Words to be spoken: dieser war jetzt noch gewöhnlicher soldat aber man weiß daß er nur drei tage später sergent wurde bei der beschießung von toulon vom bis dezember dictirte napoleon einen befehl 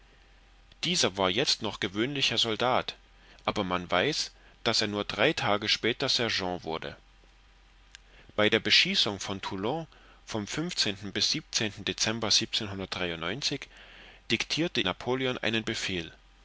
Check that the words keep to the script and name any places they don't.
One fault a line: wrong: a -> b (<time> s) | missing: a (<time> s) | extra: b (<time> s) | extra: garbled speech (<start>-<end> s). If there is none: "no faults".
no faults